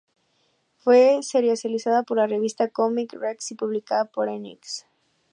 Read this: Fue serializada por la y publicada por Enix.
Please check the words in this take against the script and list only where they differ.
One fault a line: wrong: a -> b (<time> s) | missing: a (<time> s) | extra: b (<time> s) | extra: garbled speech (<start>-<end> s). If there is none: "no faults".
extra: revista Comic Rex (2.3 s)